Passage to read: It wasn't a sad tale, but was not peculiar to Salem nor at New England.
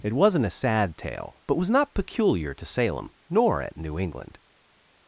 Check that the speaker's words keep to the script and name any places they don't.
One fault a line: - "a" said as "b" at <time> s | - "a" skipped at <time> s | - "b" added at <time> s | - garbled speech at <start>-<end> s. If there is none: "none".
none